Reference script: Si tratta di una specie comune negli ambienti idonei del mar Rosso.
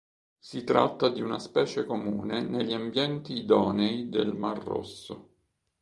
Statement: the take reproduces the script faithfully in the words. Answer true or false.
true